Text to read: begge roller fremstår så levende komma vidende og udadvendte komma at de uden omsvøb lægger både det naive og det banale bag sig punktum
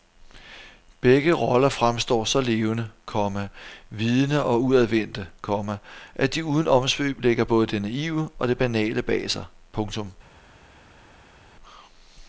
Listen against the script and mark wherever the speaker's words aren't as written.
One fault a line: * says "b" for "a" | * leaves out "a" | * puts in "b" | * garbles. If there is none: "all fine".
all fine